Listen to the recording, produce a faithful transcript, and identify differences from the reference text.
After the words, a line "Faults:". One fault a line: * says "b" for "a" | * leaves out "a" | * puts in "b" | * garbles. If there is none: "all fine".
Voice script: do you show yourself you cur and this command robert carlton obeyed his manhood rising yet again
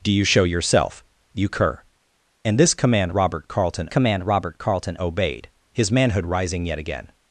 do you show yourself you cur and this command robert carlton command robert carlton obeyed his manhood rising yet again
Faults:
* puts in "command robert carlton"